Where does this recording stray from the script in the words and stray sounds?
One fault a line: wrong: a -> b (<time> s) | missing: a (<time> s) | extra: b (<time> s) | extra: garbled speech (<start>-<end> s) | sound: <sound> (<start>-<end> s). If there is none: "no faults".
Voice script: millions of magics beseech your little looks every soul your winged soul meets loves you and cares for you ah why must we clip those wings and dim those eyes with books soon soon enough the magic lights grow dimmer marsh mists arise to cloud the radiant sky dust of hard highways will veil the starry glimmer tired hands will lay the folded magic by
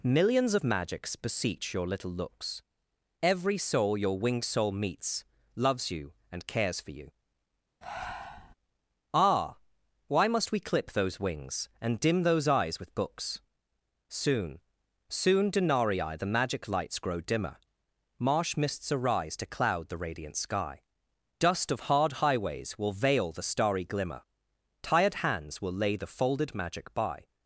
sound: breath (7.8-8.5 s)
wrong: enough -> denarii (15.5 s)